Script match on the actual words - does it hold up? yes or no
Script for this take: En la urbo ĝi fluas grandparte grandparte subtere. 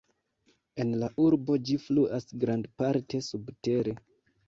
no